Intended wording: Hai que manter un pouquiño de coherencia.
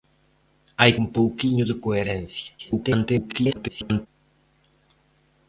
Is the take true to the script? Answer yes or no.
no